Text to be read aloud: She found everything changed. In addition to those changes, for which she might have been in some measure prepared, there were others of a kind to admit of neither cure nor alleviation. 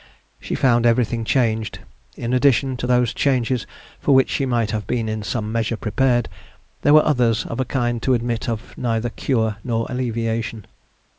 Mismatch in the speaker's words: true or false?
false